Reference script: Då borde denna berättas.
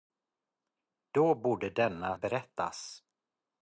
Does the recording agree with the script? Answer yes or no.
yes